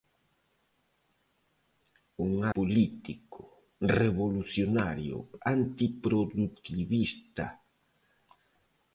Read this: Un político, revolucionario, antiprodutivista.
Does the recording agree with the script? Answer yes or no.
yes